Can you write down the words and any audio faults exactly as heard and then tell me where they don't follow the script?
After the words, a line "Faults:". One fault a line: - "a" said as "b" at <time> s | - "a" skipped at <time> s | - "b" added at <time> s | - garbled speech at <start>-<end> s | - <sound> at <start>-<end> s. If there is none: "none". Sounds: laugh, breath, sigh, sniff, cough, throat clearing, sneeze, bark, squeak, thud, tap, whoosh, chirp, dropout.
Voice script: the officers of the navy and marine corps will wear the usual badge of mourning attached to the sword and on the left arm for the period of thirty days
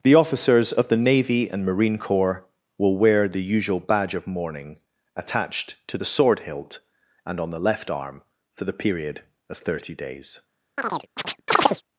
the officers of the navy and marine corps will wear the usual badge of mourning attached to the sword hilt and on the left arm for the period of thirty days
Faults:
- "hilt" added at 6.4 s
- chirp at 10.8-11.8 s